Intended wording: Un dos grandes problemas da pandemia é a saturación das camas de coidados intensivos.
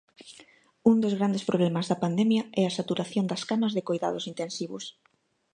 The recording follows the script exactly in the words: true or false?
true